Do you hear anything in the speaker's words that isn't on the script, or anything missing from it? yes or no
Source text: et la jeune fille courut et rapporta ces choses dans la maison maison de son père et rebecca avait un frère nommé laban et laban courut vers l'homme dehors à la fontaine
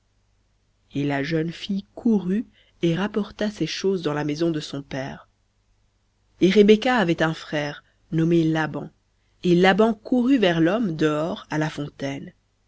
yes